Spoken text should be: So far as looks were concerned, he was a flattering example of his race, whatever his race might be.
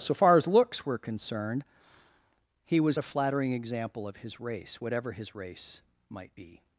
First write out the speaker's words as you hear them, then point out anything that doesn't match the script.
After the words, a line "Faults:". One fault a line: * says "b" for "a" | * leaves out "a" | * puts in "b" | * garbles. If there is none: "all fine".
So far as looks were concerned, he was a flattering example of his race, whatever his race might be.
Faults:
all fine